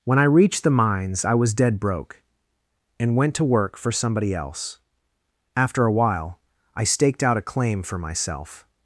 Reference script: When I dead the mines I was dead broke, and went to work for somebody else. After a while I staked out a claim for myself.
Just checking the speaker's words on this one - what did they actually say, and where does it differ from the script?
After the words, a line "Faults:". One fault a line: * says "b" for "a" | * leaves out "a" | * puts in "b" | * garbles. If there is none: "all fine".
When I reached the mines I was dead broke, and went to work for somebody else. After a while I staked out a claim for myself.
Faults:
* says "reached" for "dead"